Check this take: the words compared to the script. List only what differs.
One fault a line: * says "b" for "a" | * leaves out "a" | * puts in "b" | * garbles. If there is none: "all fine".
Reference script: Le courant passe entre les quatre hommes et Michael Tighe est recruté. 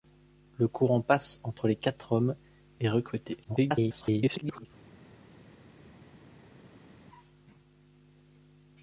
* leaves out "et Michael Tighe"
* garbles